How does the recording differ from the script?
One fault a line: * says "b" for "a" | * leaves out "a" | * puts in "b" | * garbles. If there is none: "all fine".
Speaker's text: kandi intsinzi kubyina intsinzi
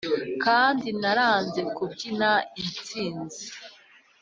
* says "naranze" for "intsinzi"